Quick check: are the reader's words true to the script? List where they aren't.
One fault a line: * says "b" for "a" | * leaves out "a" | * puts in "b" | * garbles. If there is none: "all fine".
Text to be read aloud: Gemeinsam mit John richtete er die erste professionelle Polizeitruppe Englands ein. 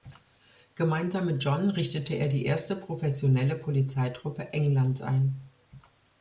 all fine